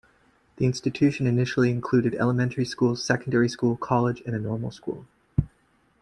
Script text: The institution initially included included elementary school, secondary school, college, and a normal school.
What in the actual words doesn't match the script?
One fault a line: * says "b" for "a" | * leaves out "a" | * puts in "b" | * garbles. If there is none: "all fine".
* leaves out "included"